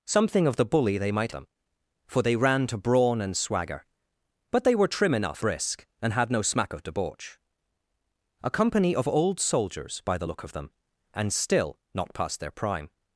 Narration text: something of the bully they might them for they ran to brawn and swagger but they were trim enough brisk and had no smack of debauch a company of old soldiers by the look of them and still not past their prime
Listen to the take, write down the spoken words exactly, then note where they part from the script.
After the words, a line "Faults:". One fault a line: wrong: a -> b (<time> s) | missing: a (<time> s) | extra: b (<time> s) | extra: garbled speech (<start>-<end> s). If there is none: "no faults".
something of the bully they might them for they ran to brawn and swagger but they were trim enough brisk and had no smack of debauch a company of old soldiers by the look of them and still not past their prime
Faults:
no faults